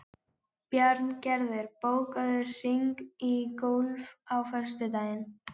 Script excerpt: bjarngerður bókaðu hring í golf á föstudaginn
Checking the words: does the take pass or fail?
pass